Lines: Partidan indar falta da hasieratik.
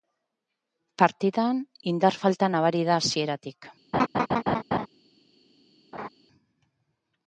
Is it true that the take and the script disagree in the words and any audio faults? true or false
true